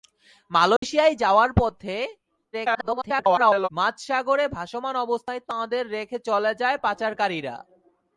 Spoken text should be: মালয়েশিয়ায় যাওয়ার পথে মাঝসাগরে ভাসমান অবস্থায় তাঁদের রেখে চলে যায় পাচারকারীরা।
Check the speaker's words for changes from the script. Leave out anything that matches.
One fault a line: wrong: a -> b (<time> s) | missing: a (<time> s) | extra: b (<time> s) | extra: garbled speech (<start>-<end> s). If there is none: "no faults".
extra: garbled speech (2.5-3.7 s)